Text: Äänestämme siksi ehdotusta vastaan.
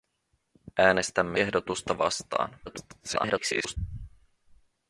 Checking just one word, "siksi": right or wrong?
wrong